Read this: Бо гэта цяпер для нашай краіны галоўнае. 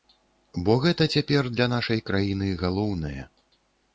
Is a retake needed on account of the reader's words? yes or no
no